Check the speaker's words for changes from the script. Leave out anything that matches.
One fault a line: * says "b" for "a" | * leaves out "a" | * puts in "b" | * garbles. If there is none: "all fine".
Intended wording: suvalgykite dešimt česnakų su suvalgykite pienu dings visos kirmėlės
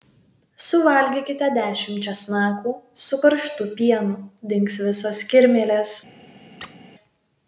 * says "karštu" for "suvalgykite"